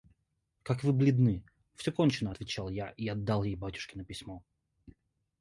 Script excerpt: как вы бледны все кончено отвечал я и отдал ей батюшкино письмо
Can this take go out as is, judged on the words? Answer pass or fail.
pass